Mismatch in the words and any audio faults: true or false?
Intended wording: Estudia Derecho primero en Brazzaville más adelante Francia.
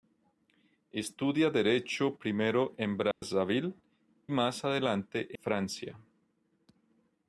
true